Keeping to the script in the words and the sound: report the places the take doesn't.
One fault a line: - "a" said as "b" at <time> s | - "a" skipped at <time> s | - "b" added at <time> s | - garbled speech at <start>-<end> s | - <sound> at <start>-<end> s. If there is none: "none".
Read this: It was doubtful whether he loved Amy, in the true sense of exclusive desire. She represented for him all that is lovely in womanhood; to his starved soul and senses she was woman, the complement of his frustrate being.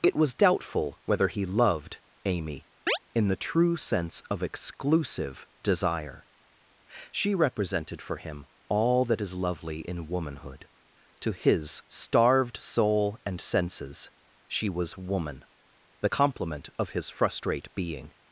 - chirp at 2.9-3.0 s